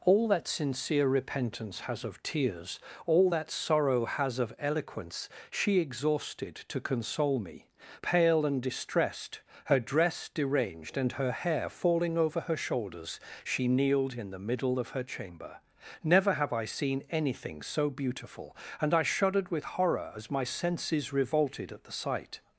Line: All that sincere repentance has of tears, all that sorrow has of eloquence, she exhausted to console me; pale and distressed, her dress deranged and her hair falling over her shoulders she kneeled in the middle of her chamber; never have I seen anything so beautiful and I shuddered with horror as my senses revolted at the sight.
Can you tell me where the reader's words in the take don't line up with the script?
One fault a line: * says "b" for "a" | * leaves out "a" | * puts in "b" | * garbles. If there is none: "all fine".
all fine